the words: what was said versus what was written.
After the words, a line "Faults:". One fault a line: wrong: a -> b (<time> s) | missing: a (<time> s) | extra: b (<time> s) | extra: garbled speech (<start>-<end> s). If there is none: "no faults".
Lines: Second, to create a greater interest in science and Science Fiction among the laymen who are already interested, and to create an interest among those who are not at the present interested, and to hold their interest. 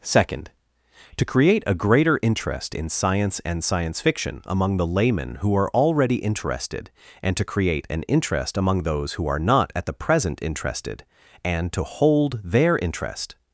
Second, to create a greater interest in science and Science Fiction among the laymen who are already interested, and to create an interest among those who are not at the present interested, and to hold their interest.
Faults:
no faults